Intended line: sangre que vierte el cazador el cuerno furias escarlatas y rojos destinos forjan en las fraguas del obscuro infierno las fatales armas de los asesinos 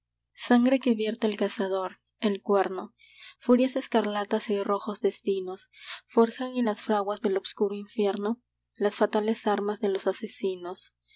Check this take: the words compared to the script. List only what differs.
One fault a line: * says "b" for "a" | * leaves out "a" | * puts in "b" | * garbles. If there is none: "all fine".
all fine